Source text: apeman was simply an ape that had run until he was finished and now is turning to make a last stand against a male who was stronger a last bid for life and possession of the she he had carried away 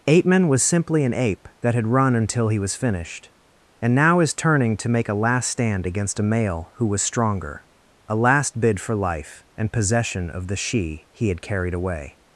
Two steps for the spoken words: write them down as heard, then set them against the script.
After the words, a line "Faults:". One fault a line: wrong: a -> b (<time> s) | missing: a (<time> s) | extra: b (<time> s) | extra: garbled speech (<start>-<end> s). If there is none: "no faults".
apeman was simply an ape that had run until he was finished and now is turning to make a last stand against a male who was stronger a last bid for life and possession of the she he had carried away
Faults:
no faults